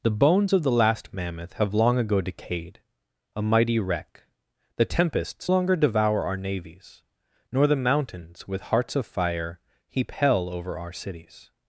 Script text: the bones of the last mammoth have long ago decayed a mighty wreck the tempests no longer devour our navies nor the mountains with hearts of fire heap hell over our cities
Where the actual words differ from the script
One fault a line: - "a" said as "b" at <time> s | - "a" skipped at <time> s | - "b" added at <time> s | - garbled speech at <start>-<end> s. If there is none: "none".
- "no" skipped at 5.5 s